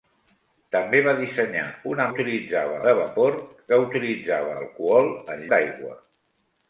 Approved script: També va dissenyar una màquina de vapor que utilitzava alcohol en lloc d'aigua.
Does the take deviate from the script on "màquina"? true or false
true